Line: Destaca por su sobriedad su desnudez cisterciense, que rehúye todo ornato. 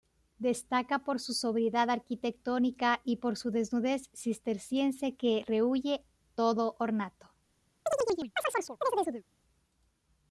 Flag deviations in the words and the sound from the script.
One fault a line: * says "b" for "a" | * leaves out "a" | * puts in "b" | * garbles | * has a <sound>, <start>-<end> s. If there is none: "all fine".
* puts in "arquitectónica y por"
* has a chirp, 7.9-9.2 s